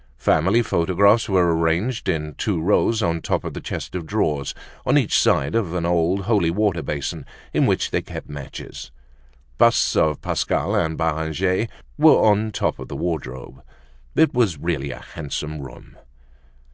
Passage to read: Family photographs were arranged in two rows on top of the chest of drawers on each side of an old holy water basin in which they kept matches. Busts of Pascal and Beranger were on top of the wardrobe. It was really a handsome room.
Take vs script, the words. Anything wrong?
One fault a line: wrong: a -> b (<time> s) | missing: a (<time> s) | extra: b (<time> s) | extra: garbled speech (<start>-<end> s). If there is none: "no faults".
no faults